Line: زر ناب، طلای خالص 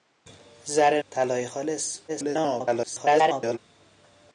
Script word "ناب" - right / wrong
wrong